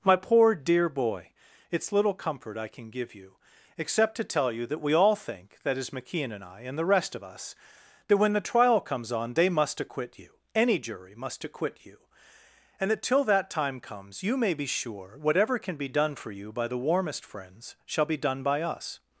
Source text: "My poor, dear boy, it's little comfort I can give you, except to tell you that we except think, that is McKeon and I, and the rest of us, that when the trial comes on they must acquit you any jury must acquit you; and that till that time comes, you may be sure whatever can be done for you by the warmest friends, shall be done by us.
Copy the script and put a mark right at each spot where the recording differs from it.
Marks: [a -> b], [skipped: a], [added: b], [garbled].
"My poor, dear boy, it's little comfort I can give you, except to tell you that we [except -> all] think, that is McKeon and I, and the rest of us, that when the trial comes on they must acquit you any jury must acquit you; and that till that time comes, you may be sure whatever can be done for you by the warmest friends, shall be done by us.